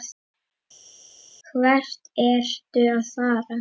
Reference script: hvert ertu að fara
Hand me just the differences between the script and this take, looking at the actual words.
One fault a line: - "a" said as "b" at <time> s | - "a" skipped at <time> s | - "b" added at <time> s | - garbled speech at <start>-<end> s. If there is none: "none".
none